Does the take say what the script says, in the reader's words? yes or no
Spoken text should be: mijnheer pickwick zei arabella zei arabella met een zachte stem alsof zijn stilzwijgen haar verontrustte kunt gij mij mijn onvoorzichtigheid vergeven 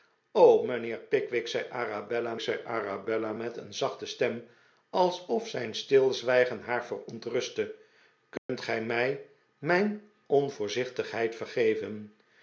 yes